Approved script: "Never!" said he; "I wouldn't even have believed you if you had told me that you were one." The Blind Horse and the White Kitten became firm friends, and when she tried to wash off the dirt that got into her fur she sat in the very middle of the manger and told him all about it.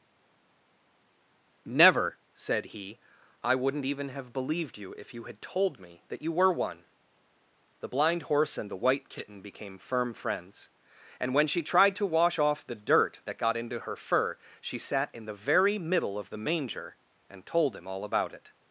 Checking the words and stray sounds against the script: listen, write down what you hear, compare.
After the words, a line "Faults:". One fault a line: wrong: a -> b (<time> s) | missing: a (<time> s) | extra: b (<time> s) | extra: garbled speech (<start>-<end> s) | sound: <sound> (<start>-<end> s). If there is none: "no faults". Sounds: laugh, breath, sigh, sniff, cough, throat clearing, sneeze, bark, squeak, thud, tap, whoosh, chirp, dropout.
"Never!" said he; "I wouldn't even have believed you if you had told me that you were one." The Blind Horse and the White Kitten became firm friends, and when she tried to wash off the dirt that got into her fur she sat in the very middle of the manger and told him all about it.
Faults:
no faults